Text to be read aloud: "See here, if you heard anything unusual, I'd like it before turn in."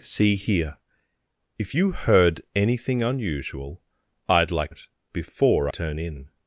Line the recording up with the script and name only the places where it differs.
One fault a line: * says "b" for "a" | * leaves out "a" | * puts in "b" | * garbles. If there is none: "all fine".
all fine